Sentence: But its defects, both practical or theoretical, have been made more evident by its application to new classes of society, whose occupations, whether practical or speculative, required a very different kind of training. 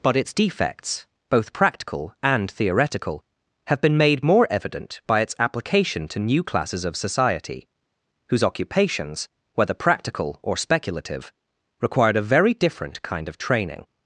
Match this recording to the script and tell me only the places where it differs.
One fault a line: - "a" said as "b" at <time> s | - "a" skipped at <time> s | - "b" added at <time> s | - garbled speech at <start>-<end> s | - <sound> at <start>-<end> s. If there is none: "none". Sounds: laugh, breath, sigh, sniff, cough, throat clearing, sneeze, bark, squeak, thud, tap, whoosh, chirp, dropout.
- "or" said as "and" at 2.2 s